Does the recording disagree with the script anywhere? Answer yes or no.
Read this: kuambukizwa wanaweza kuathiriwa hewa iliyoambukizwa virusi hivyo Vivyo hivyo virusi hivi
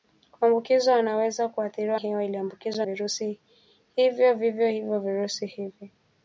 no